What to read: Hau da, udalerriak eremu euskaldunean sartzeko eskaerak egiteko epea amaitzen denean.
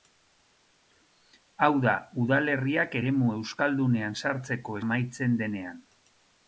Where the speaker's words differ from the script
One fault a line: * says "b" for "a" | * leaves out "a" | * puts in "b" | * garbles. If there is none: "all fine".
* leaves out "eskaerak egiteko epea"